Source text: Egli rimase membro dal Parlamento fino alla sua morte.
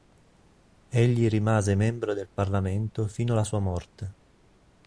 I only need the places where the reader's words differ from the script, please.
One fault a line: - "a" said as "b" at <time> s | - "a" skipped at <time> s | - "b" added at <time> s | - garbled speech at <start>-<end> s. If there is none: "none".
- "dal" said as "del" at 2.1 s